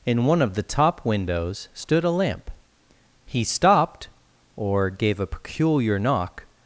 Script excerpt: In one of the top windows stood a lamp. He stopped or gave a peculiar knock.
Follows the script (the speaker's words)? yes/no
yes